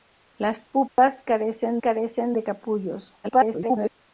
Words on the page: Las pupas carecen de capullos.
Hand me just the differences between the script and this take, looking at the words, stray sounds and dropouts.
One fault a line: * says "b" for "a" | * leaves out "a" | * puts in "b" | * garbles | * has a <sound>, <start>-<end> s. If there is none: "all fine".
* has a dropout, 0.9-1.0 s
* puts in "carecen"
* garbles